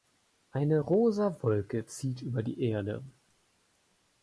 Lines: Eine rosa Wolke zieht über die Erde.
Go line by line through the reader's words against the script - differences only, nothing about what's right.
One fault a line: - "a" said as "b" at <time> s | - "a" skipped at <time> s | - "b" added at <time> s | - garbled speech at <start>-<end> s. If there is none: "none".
none